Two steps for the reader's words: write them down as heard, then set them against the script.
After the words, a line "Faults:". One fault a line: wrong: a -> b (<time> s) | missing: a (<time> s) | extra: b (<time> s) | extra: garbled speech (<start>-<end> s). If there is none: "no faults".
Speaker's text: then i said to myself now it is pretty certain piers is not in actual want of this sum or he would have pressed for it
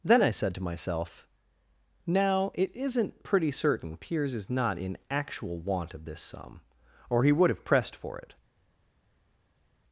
then i said to myself now it isn't pretty certain piers is not in actual want of this sum or he would have pressed for it
Faults:
wrong: is -> isn't (2.8 s)